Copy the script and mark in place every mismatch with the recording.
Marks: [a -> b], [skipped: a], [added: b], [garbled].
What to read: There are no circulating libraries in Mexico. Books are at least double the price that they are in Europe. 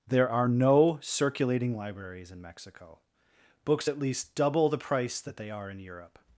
There are no circulating libraries in Mexico. Books [skipped: are] at least double the price that they are in Europe.